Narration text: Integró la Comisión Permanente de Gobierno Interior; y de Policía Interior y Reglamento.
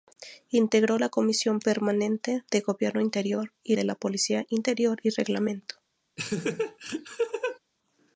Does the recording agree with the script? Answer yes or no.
yes